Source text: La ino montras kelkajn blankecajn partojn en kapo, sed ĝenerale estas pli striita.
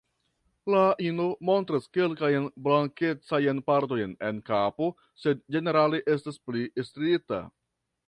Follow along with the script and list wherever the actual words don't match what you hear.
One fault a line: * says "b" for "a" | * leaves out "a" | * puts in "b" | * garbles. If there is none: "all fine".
all fine